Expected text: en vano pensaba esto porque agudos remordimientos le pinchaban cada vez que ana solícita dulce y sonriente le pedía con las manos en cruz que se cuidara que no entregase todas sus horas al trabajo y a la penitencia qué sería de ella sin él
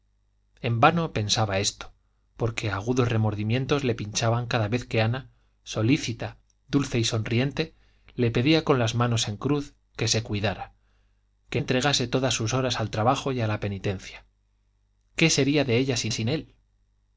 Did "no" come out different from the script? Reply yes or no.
yes